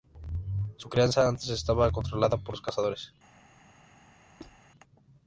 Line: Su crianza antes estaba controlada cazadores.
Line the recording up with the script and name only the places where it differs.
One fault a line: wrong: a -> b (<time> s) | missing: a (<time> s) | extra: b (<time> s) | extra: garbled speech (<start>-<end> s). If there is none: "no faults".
extra: por los (2.4 s)